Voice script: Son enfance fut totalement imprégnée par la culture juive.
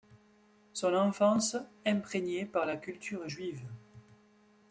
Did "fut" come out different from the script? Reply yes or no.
yes